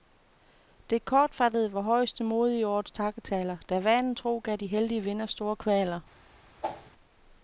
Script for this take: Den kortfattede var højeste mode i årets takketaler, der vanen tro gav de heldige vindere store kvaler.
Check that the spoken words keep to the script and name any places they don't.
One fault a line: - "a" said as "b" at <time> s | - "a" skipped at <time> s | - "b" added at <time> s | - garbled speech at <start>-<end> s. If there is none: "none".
- "Den" said as "Det" at 0.9 s